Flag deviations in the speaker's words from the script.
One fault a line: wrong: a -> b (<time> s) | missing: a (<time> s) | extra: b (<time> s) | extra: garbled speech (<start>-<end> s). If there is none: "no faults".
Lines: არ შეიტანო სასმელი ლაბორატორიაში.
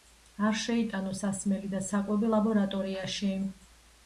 extra: და საკვები (1.7 s)